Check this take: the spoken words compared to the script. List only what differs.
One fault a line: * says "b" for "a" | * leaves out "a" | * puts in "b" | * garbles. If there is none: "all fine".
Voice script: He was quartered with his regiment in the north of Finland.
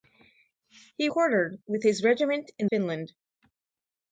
* leaves out "was"
* leaves out "the north of"